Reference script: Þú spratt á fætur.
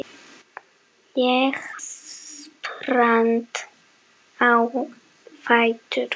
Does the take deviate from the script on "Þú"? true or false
true